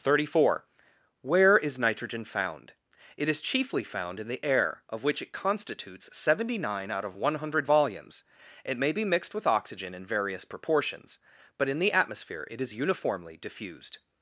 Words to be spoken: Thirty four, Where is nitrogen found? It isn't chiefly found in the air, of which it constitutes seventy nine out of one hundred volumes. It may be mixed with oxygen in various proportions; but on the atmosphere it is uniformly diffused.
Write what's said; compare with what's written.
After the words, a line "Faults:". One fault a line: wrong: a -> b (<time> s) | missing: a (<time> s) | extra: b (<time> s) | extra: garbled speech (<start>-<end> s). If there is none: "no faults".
Thirty four, Where is nitrogen found? It is chiefly found in the air, of which it constitutes seventy nine out of one hundred volumes. It may be mixed with oxygen in various proportions; but in the atmosphere it is uniformly diffused.
Faults:
wrong: isn't -> is (3.3 s)
wrong: on -> in (11.7 s)